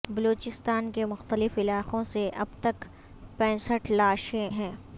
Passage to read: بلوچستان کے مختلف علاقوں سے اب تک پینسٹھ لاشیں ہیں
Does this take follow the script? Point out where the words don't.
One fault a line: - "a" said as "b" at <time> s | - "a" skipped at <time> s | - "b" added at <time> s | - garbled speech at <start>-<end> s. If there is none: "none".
none